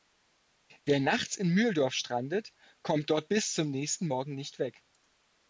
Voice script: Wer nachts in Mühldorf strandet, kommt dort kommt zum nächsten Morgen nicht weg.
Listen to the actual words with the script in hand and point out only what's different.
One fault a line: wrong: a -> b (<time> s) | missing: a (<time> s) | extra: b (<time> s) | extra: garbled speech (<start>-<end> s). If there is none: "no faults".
wrong: kommt -> bis (3.3 s)